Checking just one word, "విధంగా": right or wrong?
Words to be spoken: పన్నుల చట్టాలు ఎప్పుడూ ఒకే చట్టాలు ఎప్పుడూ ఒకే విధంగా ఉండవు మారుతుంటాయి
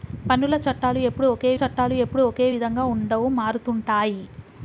right